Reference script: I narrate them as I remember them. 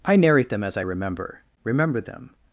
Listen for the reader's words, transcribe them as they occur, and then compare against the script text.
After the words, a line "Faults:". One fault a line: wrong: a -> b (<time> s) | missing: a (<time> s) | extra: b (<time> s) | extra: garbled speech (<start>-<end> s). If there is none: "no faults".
I narrate them as I remember remember them.
Faults:
extra: remember (1.6 s)